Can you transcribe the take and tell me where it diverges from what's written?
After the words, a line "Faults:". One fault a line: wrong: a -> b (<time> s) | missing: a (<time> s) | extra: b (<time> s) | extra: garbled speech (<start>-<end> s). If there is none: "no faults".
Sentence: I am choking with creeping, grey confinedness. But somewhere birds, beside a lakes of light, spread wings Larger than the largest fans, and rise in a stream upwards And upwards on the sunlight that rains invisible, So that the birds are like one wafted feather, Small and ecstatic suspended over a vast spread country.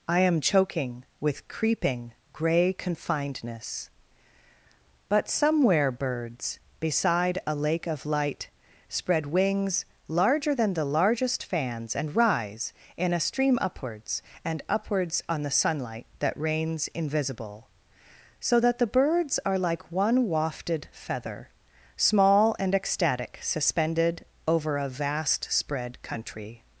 I am choking with creeping, grey confinedness. But somewhere birds, beside a lake of light, spread wings Larger than the largest fans, and rise in a stream upwards And upwards on the sunlight that rains invisible, So that the birds are like one wafted feather, Small and ecstatic suspended over a vast spread country.
Faults:
wrong: lakes -> lake (7.5 s)